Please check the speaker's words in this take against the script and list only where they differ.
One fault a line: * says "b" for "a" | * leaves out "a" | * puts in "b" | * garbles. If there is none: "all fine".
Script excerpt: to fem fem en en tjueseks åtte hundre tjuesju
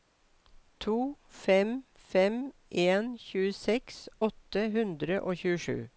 * leaves out "en"
* puts in "og"